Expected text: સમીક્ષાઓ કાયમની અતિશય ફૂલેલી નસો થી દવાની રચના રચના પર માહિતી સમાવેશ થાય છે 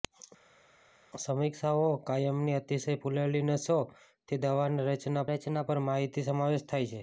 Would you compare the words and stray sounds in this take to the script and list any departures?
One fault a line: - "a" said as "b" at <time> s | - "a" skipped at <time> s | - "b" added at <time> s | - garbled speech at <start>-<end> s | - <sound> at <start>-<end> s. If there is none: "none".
none